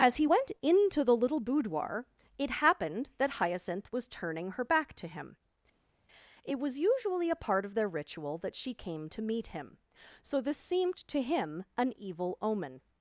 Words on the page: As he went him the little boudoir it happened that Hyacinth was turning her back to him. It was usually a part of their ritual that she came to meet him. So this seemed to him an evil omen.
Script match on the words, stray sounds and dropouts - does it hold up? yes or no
no